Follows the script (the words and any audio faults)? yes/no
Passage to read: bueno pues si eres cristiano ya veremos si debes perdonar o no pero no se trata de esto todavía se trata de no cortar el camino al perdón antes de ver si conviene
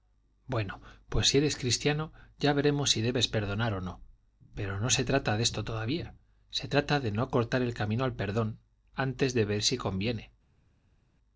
yes